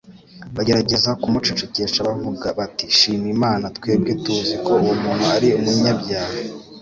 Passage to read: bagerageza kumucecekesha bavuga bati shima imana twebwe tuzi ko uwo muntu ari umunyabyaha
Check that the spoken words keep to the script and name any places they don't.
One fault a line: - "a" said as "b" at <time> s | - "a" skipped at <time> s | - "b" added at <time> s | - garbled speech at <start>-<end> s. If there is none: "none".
none